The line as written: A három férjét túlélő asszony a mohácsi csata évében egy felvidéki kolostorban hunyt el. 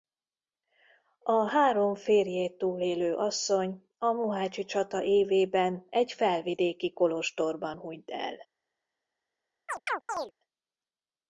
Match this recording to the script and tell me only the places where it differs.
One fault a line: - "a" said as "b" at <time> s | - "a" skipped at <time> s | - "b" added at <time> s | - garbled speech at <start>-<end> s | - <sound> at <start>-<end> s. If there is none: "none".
- chirp at 9.7-10.3 s